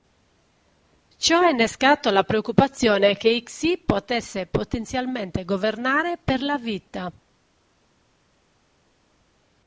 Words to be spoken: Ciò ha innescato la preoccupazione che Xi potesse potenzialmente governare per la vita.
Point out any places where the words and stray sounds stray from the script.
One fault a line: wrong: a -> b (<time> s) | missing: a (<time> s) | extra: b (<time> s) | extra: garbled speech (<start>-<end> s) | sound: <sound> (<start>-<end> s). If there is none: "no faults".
no faults